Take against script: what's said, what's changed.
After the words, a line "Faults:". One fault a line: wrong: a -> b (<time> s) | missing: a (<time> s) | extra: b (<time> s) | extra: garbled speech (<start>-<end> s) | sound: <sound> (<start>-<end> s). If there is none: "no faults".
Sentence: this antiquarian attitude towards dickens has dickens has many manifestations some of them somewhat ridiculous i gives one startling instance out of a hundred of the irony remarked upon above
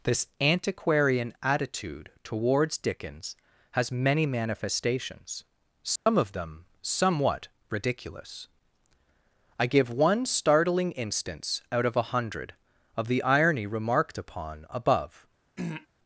this antiquarian attitude towards dickens has many manifestations some of them somewhat ridiculous i give one startling instance out of a hundred of the irony remarked upon above
Faults:
missing: dickens has (3.9 s)
sound: dropout (6.0-6.1 s)
wrong: gives -> give (9.7 s)
sound: throat clearing (15.6-15.9 s)